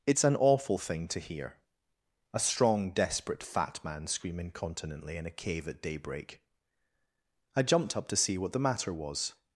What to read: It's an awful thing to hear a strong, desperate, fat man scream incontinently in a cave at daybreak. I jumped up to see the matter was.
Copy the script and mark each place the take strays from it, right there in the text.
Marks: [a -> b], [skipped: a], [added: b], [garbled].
It's an awful thing to hear a strong, desperate, fat man scream incontinently in a cave at daybreak. I jumped up to see [added: what] the matter was.